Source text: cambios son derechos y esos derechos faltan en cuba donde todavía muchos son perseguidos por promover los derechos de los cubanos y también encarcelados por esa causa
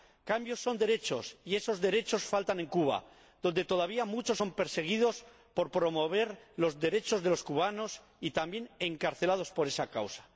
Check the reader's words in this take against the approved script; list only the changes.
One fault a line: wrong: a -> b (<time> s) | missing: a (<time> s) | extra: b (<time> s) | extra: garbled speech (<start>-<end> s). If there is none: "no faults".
no faults